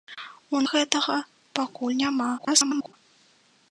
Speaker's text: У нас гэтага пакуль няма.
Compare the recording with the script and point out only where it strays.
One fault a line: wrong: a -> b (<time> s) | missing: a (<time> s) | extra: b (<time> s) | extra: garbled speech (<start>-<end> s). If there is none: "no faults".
missing: нас (0.6 s)
extra: garbled speech (2.4-2.9 s)